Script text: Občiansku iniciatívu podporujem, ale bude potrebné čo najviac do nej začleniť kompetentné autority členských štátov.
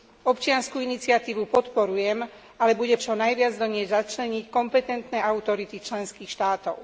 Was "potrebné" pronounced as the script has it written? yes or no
no